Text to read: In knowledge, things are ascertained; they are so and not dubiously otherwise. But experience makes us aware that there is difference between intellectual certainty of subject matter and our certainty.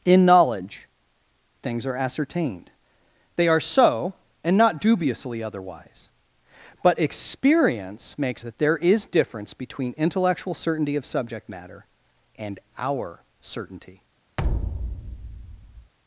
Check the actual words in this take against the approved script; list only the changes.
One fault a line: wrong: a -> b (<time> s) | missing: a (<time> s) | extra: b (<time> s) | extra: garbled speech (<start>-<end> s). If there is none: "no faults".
missing: us aware (8.4 s)